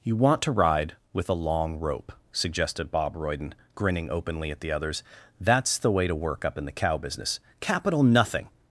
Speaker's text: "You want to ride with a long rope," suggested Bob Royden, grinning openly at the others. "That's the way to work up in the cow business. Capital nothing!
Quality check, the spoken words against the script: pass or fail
pass